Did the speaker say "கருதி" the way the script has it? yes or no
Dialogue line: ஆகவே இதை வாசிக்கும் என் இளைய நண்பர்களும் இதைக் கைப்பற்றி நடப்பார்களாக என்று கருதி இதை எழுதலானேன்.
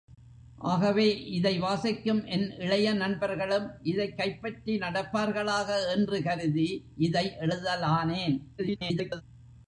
yes